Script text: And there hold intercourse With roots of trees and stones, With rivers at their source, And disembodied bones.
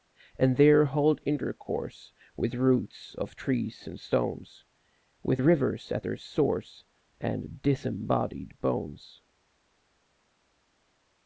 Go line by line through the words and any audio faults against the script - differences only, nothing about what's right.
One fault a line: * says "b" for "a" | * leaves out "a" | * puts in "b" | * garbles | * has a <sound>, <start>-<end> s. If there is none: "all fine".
all fine